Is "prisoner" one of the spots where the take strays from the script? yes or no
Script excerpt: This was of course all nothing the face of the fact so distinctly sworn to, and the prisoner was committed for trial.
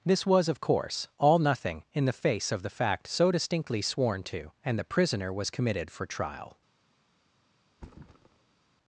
no